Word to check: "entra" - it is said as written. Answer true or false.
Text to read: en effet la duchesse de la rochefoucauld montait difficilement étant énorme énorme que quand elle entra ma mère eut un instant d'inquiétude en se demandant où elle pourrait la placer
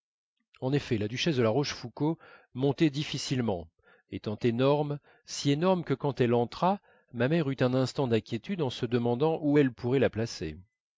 true